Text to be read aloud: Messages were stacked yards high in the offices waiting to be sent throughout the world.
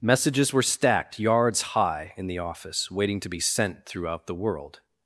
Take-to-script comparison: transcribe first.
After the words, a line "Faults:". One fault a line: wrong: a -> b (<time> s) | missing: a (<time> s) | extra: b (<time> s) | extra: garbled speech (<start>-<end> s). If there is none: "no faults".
Messages were stacked yards high in the office waiting to be sent throughout the world.
Faults:
wrong: offices -> office (2.4 s)